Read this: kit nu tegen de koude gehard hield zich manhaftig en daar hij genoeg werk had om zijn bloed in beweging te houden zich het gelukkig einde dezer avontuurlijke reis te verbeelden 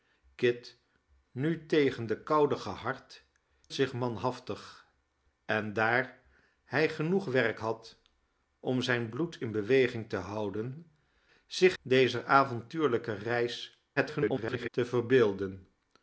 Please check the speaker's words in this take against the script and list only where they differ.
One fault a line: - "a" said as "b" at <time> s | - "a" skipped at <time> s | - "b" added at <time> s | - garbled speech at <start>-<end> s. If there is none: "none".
- "hield" skipped at 3.2 s
- "het gelukkig einde" skipped at 11.7 s
- garbled speech at 14.0-14.7 s